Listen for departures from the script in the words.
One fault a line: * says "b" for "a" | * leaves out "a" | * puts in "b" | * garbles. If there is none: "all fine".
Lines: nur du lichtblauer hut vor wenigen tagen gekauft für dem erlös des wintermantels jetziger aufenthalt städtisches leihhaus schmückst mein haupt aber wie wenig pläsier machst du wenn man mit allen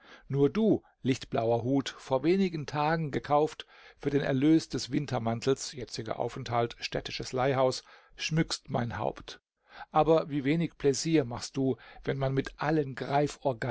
* says "den" for "dem"